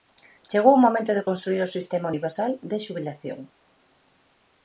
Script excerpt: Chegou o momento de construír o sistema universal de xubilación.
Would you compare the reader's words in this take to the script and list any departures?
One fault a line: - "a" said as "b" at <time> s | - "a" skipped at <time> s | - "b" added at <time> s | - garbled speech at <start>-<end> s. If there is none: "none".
none